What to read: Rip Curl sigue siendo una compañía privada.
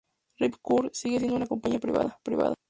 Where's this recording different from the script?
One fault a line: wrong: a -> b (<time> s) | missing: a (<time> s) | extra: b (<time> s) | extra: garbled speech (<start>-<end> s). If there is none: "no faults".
no faults